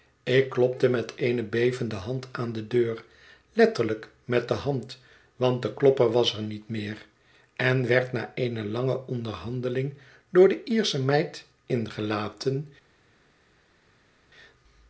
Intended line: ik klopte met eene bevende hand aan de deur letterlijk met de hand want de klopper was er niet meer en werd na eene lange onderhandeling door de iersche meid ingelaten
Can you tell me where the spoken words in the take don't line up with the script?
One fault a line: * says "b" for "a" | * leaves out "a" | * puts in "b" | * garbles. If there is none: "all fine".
all fine